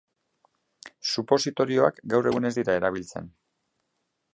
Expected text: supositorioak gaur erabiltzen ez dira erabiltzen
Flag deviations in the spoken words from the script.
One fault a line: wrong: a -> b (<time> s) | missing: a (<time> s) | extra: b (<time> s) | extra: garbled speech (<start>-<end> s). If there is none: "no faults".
wrong: erabiltzen -> egun (2.3 s)